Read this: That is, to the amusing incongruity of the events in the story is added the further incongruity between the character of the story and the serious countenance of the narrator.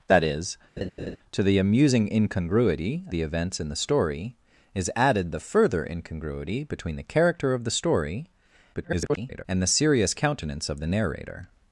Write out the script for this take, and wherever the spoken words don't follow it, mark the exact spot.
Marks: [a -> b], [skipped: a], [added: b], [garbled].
That is, to the amusing incongruity [skipped: of] the events in the story is added the further incongruity between the character of the story [garbled] and the serious countenance of the narrator.